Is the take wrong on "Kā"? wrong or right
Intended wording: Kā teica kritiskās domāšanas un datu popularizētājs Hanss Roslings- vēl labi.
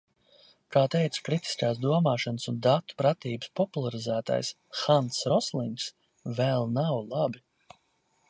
right